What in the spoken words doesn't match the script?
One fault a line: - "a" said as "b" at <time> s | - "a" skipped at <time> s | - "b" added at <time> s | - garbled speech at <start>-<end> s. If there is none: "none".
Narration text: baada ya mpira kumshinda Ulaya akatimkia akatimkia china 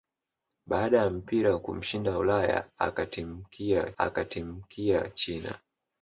none